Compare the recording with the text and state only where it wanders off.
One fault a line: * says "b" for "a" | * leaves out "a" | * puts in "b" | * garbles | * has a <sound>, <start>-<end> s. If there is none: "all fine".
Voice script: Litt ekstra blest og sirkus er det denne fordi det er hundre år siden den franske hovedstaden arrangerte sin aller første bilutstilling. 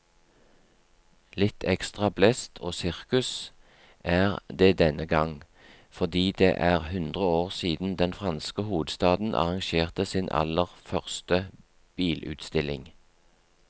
* puts in "gang"